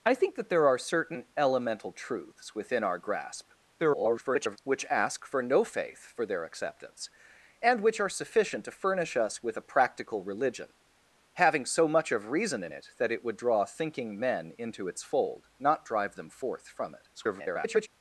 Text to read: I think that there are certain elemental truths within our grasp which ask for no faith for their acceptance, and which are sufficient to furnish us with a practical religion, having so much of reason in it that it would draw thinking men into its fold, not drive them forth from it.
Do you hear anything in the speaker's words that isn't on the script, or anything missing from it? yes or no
yes